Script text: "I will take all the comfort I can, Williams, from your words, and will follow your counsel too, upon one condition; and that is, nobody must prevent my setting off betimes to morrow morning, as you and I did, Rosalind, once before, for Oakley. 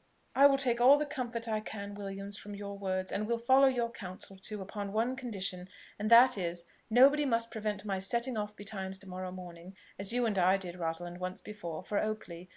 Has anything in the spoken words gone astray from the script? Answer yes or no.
no